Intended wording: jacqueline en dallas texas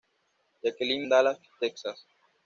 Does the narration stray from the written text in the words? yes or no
no